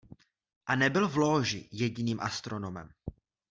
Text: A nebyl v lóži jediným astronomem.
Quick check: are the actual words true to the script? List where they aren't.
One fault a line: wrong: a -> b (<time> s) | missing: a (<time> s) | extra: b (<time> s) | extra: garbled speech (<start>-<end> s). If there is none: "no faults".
no faults